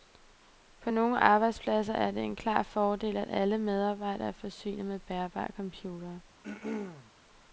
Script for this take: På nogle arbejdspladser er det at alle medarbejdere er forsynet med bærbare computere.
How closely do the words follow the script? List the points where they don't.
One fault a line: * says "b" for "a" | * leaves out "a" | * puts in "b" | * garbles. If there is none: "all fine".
* puts in "en klar fordel"